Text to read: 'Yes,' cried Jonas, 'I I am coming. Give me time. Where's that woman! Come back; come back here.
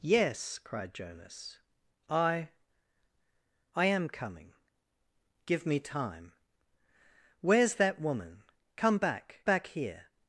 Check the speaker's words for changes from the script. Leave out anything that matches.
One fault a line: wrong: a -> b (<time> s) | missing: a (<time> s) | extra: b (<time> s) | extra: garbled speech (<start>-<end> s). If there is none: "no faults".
missing: come (9.4 s)